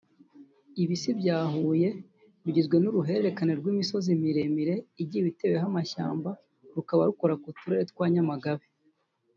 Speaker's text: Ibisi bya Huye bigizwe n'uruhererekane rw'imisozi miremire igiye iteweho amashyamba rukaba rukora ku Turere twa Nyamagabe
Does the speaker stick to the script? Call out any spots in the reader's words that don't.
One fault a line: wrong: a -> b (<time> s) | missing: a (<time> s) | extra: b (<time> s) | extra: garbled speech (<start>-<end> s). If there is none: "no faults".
no faults